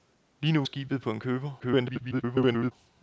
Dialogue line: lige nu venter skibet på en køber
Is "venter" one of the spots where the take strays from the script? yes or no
yes